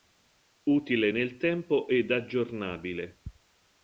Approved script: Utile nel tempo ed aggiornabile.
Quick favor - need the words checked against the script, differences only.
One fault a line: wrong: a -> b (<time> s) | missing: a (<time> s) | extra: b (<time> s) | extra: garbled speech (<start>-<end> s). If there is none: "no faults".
no faults